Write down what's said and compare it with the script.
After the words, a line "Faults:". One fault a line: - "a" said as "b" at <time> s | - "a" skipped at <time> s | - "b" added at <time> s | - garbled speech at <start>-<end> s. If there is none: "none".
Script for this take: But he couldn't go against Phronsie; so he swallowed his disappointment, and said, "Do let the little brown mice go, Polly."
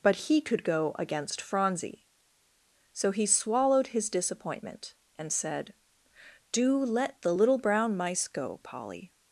But he could go against Phronsie; so he swallowed his disappointment, and said, "Do let the little brown mice go, Polly."
Faults:
- "couldn't" said as "could" at 0.4 s